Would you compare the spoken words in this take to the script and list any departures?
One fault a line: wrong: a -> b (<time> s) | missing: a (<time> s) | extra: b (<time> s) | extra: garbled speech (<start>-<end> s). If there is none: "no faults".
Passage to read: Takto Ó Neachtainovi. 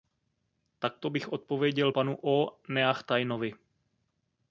extra: bych odpověděl panu (1.1 s)